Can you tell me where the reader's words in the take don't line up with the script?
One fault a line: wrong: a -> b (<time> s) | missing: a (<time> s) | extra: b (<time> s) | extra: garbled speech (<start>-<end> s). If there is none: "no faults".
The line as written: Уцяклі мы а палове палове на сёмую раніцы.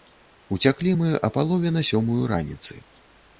missing: палове (1.7 s)